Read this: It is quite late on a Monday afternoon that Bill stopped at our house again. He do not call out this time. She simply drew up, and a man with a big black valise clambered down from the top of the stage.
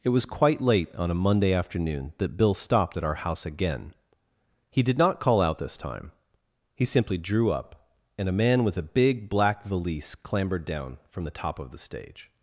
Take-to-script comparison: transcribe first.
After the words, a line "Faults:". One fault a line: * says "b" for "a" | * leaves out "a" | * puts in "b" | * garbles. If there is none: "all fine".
It was quite late on a Monday afternoon that Bill stopped at our house again. He did not call out this time. He simply drew up, and a man with a big black valise clambered down from the top of the stage.
Faults:
* says "was" for "is"
* says "did" for "do"
* says "He" for "She"